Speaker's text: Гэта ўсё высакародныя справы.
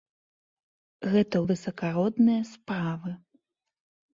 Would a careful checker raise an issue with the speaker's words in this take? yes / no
yes